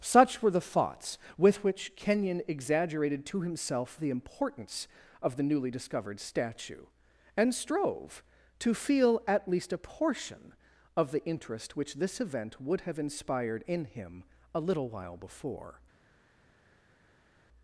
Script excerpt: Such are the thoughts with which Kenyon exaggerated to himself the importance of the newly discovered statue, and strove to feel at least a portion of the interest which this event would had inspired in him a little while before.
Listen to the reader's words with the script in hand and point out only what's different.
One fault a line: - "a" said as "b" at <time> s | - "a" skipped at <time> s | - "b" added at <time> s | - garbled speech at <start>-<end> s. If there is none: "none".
- "are" said as "were" at 0.4 s
- "had" said as "have" at 12.8 s